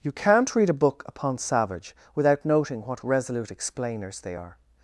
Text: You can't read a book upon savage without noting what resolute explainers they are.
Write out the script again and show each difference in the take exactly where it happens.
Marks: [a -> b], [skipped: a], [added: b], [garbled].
You can't read a book upon savage without noting what resolute explainers they are.